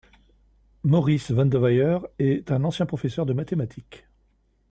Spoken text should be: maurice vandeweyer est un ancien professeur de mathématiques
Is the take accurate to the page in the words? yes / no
yes